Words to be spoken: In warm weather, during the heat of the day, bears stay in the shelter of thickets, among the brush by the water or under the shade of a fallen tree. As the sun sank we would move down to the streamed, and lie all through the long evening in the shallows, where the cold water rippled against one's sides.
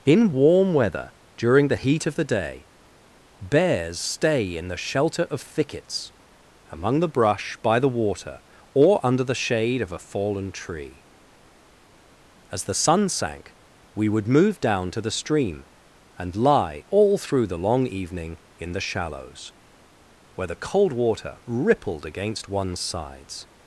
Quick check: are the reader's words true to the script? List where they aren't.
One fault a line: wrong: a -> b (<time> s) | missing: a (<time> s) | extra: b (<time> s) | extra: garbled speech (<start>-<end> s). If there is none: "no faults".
wrong: streamed -> stream (15.1 s)